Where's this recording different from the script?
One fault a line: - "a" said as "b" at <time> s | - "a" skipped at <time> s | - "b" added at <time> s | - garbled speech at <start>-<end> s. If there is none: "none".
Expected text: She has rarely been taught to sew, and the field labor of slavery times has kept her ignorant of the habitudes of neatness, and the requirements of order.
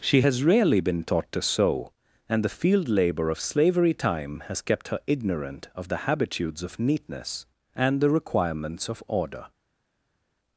- "times" said as "time" at 3.9 s